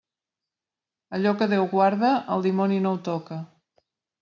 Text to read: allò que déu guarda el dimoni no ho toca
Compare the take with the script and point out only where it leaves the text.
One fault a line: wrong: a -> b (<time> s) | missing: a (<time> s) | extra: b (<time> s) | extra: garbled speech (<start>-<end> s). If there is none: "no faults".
no faults